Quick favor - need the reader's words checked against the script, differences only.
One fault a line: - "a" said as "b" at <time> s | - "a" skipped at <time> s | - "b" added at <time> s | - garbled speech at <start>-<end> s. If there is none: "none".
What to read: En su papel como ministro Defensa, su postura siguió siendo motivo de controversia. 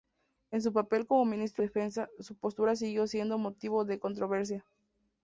none